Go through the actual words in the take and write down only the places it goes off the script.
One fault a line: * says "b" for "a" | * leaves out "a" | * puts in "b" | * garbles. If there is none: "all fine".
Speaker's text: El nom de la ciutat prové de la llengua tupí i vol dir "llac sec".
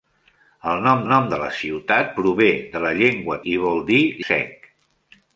* puts in "nom"
* leaves out "tupí"
* leaves out "llac"